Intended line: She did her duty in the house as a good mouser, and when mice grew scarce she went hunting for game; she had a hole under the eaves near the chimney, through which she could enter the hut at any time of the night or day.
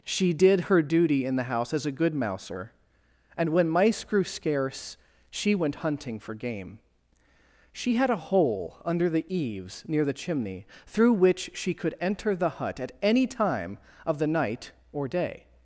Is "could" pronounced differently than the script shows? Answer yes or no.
no